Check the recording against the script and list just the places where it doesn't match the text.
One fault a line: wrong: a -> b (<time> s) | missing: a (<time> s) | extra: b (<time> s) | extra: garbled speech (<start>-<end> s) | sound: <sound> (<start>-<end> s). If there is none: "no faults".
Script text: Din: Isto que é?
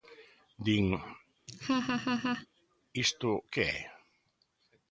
sound: laugh (1.5-2.5 s)